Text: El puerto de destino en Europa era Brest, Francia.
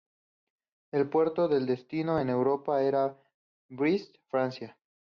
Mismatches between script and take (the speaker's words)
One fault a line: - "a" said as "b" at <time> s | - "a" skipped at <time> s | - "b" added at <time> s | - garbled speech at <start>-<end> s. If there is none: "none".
none